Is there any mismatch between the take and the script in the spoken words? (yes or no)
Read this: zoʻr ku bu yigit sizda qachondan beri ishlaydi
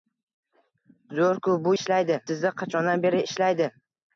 yes